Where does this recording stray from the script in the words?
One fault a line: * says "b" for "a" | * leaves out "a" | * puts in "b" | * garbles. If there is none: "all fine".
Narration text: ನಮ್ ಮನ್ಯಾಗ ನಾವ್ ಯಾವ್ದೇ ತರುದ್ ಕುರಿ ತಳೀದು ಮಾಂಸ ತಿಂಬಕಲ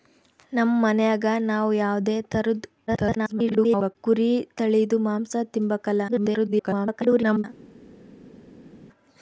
* garbles
* garbles